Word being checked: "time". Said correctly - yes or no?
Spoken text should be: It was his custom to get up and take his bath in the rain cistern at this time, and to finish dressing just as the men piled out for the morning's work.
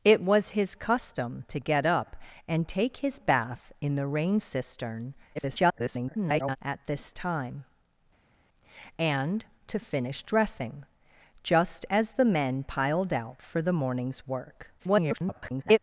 yes